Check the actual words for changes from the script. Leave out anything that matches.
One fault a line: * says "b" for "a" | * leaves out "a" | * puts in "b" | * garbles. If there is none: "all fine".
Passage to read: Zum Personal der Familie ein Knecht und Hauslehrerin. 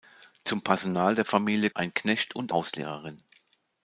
all fine